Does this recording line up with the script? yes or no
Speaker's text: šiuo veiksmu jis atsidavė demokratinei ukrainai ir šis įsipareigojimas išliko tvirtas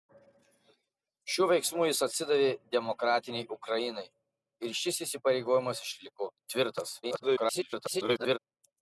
no